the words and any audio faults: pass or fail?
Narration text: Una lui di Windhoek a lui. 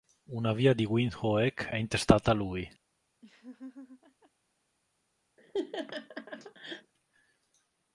fail